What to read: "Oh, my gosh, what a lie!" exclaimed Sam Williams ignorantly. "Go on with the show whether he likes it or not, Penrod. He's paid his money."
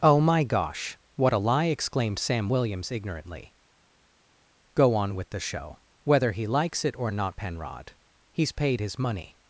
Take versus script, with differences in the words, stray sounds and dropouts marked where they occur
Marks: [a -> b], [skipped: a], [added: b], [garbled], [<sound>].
"Oh, my gosh, what a lie!" exclaimed Sam Williams ignorantly. "Go on with the show whether he likes it or not, Penrod. He's paid his money."